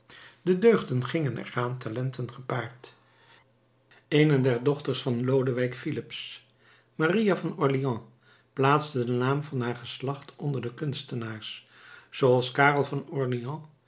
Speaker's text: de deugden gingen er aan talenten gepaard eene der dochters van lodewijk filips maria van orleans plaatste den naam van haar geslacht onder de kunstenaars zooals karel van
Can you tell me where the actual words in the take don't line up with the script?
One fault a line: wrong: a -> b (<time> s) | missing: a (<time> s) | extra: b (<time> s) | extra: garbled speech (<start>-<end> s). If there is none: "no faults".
no faults